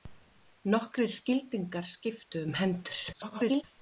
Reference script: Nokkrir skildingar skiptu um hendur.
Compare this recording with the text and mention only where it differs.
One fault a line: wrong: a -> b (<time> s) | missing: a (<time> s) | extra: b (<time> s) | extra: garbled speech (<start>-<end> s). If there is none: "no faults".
extra: garbled speech (3.1-3.6 s)